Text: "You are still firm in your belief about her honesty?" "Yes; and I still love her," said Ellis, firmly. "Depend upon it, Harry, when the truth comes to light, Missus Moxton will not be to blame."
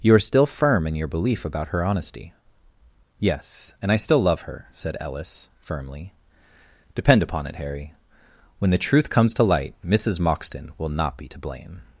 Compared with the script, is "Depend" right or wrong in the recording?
right